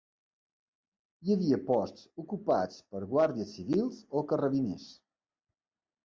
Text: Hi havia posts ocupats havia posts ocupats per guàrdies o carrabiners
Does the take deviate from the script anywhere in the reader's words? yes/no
yes